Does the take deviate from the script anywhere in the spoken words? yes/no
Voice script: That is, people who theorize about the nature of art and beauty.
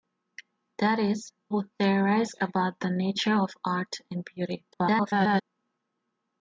yes